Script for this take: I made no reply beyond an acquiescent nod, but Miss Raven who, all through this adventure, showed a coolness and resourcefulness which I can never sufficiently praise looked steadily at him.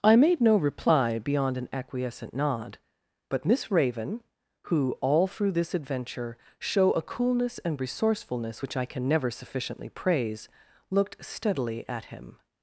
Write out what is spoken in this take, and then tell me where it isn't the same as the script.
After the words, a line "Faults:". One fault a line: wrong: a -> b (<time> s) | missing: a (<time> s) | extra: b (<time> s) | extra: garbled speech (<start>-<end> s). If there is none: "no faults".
I made no reply beyond an acquiescent nod, but Miss Raven who, all through this adventure, show a coolness and resourcefulness which I can never sufficiently praise looked steadily at him.
Faults:
wrong: showed -> show (6.6 s)